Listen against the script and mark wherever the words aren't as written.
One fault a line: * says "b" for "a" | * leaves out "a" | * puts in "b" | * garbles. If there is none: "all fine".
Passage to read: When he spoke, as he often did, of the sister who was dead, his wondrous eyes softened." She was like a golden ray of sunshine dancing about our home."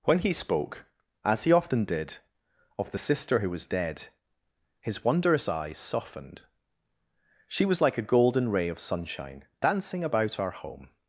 all fine